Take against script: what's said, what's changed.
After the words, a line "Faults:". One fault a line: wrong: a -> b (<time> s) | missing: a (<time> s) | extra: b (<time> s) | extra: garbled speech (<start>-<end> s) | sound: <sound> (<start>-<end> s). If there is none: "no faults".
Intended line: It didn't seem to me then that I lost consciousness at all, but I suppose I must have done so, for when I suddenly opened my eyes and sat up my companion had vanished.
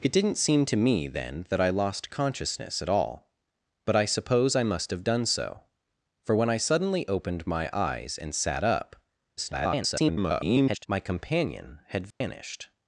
It didn't seem to me then that I lost consciousness at all, but I suppose I must have done so, for when I suddenly opened my eyes and sat up [garbled] my companion had vanished.
Faults:
extra: garbled speech (9.4-10.9 s)
sound: dropout (12.1-12.2 s)